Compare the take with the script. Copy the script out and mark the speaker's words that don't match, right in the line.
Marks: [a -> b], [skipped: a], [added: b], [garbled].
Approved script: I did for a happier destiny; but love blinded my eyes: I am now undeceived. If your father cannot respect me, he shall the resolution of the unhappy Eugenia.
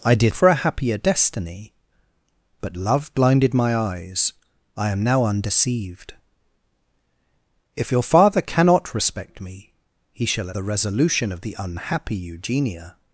I did for a happier destiny; but love blinded my eyes: I am now undeceived. If your father cannot respect me, he shall the resolution of the unhappy Eugenia.